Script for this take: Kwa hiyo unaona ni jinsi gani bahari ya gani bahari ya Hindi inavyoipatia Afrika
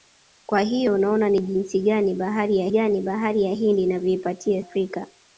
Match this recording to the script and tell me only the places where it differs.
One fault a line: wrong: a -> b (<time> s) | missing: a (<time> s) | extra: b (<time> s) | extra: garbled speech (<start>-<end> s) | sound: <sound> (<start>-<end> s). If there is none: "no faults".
no faults